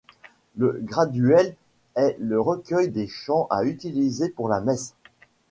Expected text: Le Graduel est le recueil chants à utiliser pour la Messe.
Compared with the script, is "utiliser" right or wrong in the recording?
right